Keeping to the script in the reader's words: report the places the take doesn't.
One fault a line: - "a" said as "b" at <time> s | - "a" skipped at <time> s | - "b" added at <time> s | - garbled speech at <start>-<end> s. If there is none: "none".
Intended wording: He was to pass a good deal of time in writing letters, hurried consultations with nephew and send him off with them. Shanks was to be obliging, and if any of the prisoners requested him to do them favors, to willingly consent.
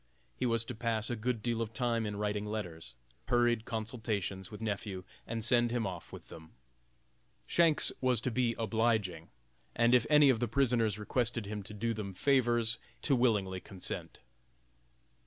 none